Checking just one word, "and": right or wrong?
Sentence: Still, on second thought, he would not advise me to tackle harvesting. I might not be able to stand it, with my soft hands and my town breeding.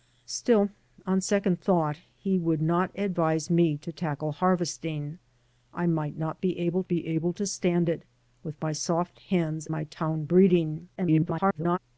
wrong